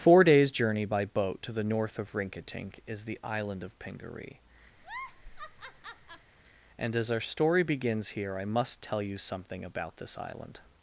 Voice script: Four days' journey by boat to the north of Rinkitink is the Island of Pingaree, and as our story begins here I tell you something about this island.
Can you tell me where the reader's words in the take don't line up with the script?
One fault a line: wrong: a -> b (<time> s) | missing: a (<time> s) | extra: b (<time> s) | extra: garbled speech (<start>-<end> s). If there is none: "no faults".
extra: must (8.4 s)